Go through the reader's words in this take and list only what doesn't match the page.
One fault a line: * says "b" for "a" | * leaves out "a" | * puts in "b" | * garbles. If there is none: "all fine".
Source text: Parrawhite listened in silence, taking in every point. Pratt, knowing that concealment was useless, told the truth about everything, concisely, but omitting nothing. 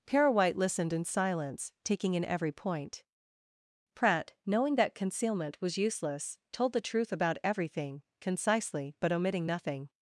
all fine